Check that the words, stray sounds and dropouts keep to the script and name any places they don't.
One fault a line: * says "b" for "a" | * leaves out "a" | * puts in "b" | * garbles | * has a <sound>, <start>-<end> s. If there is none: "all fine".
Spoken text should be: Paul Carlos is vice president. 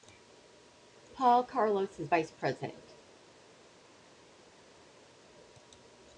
all fine